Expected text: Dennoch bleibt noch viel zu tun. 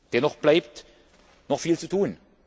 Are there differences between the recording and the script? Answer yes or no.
no